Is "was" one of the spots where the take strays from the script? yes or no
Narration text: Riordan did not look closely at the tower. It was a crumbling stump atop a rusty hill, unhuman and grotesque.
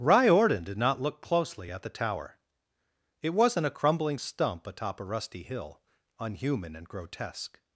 yes